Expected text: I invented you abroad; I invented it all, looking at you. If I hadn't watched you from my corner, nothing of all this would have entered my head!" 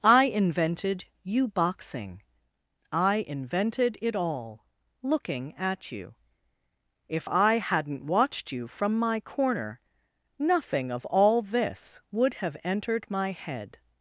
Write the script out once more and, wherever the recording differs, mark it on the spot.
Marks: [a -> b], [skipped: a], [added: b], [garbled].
I invented you [abroad; -> boxing] I invented it all, looking at you. If I hadn't watched you from my corner, nothing of all this would have entered my head!"